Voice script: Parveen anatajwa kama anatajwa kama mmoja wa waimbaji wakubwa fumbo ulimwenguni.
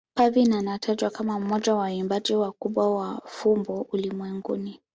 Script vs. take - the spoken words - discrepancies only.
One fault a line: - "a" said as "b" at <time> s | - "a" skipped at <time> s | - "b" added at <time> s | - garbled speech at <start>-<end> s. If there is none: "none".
- "anatajwa kama" skipped at 1.4 s
- "wa" added at 3.0 s